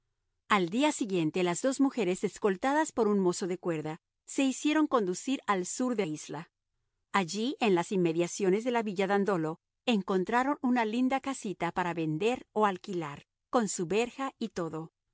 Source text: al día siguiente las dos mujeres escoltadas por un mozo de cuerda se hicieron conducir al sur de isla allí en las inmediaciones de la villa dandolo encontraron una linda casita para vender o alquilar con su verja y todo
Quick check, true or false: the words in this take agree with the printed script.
true